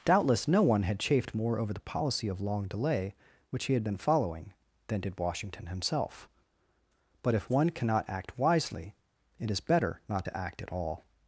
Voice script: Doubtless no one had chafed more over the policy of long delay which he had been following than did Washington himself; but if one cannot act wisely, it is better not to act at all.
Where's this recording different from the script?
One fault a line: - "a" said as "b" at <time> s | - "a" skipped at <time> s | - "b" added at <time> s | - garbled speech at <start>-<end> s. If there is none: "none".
none